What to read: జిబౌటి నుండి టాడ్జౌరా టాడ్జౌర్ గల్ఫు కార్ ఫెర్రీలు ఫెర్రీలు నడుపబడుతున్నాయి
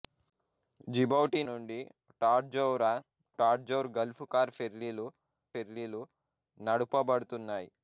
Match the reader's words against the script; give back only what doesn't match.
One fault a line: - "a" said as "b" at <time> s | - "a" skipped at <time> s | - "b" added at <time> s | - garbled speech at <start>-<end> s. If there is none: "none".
none